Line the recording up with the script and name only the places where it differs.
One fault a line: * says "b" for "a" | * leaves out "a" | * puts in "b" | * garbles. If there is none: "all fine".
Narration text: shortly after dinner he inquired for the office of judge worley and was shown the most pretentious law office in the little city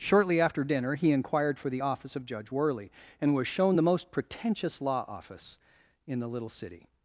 all fine